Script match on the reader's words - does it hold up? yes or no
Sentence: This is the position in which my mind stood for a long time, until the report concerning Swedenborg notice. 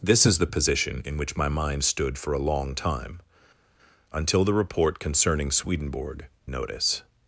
yes